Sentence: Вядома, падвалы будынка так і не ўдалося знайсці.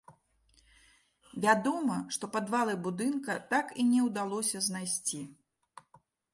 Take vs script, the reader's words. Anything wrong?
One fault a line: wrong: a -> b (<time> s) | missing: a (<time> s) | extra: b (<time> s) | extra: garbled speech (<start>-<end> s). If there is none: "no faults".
extra: што (2.2 s)